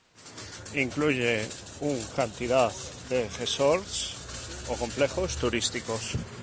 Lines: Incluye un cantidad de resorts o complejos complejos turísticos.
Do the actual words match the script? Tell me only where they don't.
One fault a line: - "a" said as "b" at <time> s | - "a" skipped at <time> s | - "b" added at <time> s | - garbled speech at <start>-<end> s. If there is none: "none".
- "complejos" skipped at 5.3 s